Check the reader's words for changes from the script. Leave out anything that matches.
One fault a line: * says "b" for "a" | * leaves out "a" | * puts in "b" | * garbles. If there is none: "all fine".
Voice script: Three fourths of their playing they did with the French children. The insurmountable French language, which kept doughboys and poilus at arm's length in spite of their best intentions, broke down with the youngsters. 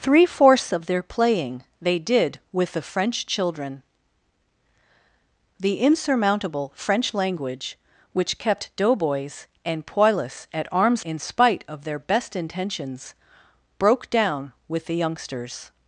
* leaves out "length"